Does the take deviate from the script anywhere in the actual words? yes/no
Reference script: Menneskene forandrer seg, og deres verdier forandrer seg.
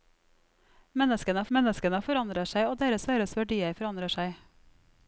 yes